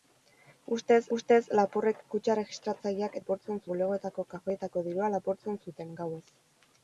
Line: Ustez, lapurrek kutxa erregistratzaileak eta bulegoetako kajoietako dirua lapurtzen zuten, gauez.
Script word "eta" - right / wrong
wrong